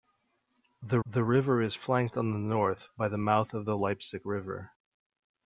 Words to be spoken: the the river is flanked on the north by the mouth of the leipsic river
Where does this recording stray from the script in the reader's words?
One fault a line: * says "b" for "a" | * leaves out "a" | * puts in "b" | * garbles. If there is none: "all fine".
all fine